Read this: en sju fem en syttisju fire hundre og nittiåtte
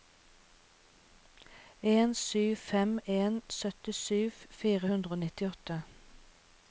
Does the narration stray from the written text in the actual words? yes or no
no